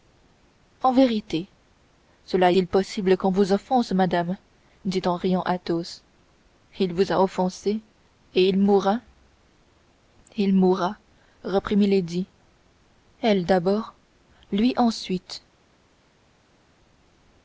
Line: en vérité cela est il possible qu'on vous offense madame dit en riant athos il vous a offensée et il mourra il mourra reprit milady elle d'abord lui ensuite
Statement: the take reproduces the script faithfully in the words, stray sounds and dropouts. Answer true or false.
false